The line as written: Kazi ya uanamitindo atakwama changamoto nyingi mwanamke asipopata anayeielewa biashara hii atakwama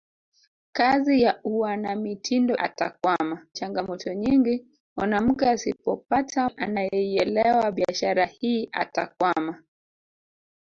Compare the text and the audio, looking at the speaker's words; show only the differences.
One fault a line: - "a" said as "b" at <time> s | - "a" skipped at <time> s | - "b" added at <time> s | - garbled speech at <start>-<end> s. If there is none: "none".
none